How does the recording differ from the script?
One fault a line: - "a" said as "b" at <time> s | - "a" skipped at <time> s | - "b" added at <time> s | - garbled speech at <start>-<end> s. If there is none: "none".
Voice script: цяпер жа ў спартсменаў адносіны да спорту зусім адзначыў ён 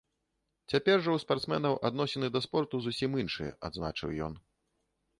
- "іншыя" added at 3.3 s